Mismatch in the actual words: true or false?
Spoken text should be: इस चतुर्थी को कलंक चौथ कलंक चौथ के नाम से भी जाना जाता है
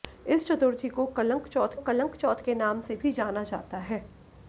false